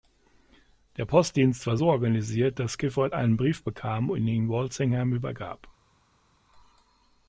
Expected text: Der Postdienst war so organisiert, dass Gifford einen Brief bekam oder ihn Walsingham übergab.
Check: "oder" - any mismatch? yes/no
yes